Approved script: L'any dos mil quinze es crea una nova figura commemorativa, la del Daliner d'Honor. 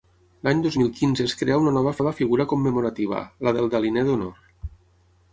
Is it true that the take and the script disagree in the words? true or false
true